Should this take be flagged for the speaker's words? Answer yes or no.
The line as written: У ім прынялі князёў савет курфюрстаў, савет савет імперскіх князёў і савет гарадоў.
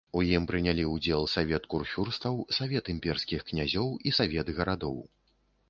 yes